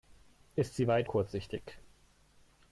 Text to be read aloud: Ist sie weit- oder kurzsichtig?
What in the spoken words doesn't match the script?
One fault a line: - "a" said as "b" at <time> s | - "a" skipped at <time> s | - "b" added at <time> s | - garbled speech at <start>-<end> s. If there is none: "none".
- "oder" skipped at 1.1 s